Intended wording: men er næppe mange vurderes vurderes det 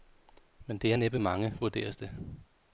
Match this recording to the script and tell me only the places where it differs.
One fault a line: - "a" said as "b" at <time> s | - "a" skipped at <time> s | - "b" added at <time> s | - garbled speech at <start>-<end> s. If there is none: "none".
- "det" added at 0.8 s
- "vurderes" skipped at 2.0 s